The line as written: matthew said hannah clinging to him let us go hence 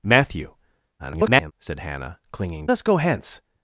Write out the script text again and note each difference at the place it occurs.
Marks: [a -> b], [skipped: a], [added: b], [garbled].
matthew [garbled] said hannah clinging [skipped: to him let] us go hence